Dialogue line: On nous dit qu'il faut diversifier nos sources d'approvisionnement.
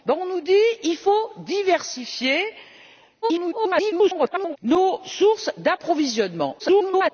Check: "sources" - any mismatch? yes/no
no